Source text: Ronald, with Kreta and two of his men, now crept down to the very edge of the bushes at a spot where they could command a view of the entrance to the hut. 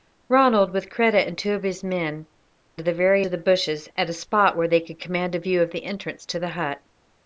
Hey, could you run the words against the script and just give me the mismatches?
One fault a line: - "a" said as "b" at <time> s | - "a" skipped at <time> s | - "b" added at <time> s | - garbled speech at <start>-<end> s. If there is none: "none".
- "now crept down" skipped at 2.2 s
- "edge" skipped at 3.3 s